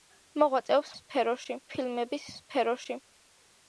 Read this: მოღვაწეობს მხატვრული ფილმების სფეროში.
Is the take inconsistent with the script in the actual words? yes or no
yes